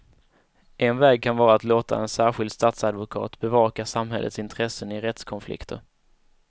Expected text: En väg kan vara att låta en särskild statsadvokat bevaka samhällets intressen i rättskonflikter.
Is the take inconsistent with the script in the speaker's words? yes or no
no